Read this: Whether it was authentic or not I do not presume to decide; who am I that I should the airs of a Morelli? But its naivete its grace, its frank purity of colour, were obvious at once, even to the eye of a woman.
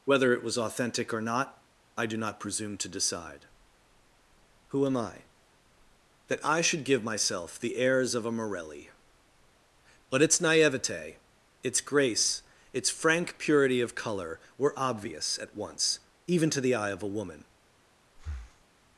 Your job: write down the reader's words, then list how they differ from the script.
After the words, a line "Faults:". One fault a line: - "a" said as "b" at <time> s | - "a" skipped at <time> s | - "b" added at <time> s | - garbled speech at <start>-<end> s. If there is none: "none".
Whether it was authentic or not I do not presume to decide; who am I that I should give myself the airs of a Morelli? But its naivete its grace, its frank purity of colour, were obvious at once, even to the eye of a woman.
Faults:
- "give myself" added at 6.8 s